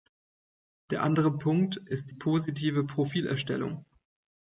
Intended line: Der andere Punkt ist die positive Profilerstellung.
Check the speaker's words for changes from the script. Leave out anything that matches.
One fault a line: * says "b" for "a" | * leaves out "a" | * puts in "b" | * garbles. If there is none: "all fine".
* leaves out "die"